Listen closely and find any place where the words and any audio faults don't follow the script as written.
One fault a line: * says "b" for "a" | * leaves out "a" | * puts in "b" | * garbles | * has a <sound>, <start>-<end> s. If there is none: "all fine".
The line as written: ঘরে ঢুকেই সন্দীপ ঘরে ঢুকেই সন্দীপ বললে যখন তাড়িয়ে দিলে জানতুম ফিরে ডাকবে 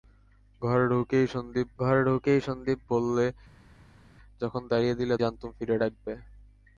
all fine